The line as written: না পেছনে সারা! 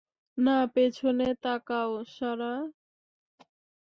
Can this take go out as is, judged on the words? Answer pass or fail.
fail